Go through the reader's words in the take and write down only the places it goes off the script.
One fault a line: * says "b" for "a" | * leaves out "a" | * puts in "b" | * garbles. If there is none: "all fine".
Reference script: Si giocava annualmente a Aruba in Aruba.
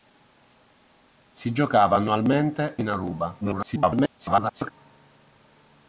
* leaves out "a Aruba"
* garbles